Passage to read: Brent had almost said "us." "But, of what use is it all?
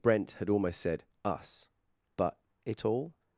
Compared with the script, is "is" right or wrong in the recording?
wrong